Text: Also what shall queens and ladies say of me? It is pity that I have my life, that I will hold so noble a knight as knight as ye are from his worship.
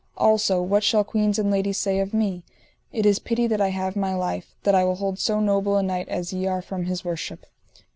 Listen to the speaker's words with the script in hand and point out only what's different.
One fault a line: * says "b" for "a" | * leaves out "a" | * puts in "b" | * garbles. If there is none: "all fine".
* leaves out "knight as"